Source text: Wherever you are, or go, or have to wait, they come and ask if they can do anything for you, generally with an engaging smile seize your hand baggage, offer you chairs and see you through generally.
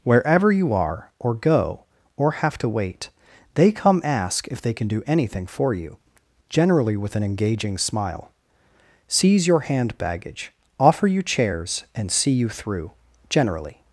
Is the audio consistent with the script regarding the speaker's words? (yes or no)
no